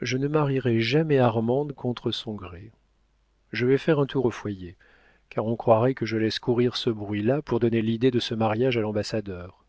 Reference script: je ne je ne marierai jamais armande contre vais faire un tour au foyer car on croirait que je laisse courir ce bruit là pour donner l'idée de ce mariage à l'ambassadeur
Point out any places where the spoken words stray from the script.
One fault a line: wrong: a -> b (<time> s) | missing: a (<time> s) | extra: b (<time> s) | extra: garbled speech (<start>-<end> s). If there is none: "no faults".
missing: je ne (0.3 s)
extra: son gré je (2.1 s)